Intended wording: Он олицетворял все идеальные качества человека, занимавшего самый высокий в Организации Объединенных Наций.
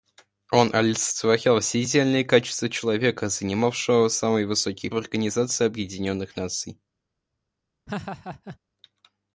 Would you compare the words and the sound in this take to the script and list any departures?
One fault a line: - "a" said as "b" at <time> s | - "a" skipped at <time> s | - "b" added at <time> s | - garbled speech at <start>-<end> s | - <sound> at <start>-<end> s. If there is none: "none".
- laugh at 7.9-8.6 s